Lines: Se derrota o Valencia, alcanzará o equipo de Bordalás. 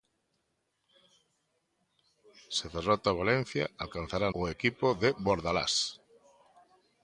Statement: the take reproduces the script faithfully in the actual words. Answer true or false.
true